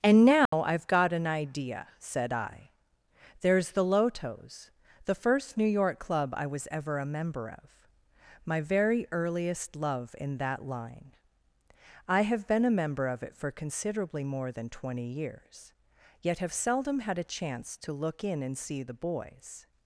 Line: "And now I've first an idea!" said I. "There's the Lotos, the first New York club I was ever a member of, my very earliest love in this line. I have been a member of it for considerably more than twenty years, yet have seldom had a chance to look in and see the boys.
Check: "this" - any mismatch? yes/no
yes